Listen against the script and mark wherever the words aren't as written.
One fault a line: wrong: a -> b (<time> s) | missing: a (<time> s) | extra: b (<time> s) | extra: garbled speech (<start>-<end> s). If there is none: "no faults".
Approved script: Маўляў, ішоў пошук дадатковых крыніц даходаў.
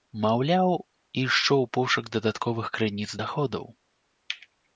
no faults